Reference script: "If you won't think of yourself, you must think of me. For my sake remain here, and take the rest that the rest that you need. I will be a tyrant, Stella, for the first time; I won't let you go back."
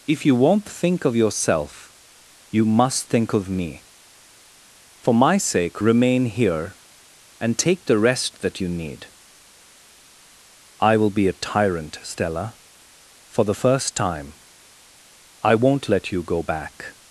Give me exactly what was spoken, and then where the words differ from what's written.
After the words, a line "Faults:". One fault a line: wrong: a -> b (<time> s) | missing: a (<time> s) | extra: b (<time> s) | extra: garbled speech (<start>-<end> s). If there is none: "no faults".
"If you won't think of yourself, you must think of me. For my sake remain here, and take the rest that you need. I will be a tyrant, Stella, for the first time; I won't let you go back."
Faults:
missing: the rest that (8.6 s)